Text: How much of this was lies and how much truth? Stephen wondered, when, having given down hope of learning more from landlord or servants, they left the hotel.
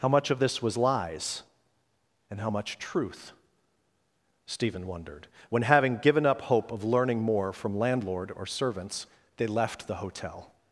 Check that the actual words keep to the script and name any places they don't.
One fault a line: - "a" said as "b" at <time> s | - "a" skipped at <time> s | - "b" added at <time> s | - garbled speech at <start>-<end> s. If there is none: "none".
- "down" said as "up" at 6.2 s